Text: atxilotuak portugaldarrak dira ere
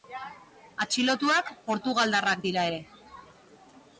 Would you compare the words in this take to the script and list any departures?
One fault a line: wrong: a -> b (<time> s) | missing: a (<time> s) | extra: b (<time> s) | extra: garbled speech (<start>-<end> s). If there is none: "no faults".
no faults